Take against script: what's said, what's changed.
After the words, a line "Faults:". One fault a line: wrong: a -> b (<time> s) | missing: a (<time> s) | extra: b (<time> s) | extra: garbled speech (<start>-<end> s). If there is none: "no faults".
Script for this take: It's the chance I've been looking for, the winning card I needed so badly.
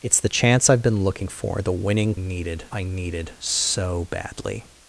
It's the chance I've been looking for, the winning needed I needed so badly.
Faults:
wrong: card -> needed (2.2 s)